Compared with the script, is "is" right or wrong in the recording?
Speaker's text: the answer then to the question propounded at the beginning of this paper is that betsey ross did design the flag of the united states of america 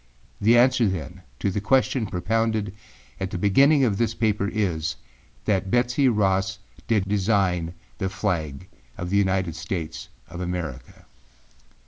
right